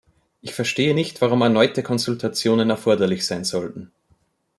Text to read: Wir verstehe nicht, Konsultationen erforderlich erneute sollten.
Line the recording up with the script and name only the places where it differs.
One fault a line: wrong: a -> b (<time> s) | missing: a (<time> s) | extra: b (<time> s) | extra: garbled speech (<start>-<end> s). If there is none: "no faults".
wrong: Wir -> Ich (0.4 s)
extra: warum erneute (1.2 s)
wrong: erneute -> sein (3.2 s)